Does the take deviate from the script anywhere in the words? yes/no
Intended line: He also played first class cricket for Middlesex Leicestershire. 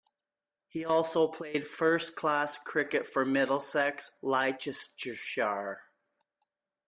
no